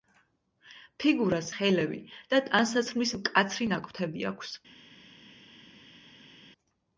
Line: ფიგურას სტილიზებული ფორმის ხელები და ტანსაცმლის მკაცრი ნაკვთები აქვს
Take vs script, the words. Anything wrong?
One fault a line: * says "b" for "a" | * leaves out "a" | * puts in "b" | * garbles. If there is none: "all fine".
* leaves out "სტილიზებული ფორმის"